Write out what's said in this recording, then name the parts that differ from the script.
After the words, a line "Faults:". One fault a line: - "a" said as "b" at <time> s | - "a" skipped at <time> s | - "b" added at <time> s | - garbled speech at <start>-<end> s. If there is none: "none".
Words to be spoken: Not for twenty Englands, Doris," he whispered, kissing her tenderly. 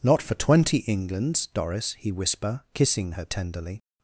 Not for twenty Englands, Doris," he whisper, kissing her tenderly.
Faults:
- "whispered" said as "whisper" at 2.1 s